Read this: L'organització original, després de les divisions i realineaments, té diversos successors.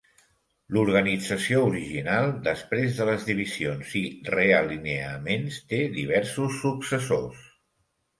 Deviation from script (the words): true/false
false